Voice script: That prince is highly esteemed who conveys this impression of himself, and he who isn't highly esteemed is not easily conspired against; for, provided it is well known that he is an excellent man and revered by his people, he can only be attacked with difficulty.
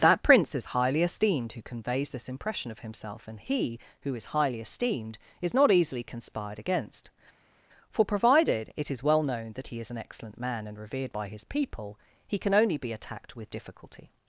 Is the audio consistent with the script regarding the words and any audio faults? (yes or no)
no